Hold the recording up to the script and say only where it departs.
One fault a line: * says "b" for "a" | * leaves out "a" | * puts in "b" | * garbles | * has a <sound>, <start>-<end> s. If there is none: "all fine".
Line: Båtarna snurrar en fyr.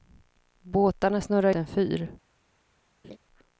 * has a laugh, 3.0-3.2 s